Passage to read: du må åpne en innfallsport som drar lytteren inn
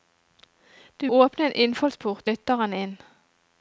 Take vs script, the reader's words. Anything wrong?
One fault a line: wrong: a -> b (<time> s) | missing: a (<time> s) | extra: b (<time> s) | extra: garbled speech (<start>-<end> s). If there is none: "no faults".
missing: må (1.1 s)
missing: som drar (2.3 s)